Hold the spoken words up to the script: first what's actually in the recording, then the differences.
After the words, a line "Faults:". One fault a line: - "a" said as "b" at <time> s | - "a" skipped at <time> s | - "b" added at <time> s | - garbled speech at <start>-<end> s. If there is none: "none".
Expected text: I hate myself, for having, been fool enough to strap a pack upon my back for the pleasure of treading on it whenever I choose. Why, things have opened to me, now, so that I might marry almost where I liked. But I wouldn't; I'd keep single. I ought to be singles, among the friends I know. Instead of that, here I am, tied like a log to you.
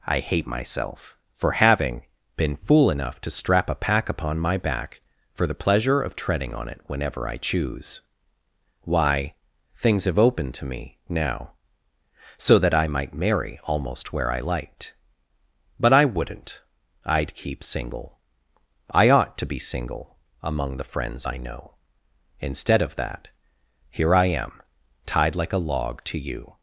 I hate myself, for having, been fool enough to strap a pack upon my back for the pleasure of treading on it whenever I choose. Why, things have opened to me, now, so that I might marry almost where I liked. But I wouldn't; I'd keep single. I ought to be single, among the friends I know. Instead of that, here I am, tied like a log to you.
Faults:
- "singles" said as "single" at 19.6 s